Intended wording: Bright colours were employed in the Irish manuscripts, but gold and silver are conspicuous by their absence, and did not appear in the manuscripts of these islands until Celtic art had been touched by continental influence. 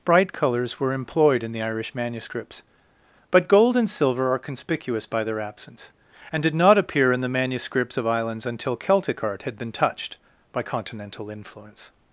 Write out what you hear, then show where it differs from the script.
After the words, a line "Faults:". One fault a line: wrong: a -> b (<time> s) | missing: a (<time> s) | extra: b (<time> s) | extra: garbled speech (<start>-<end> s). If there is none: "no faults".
Bright colours were employed in the Irish manuscripts, but gold and silver are conspicuous by their absence, and did not appear in the manuscripts of islands until Celtic art had been touched by continental influence.
Faults:
missing: these (8.1 s)